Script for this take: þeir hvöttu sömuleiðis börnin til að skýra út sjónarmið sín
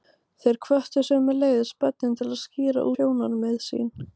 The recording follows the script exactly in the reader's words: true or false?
false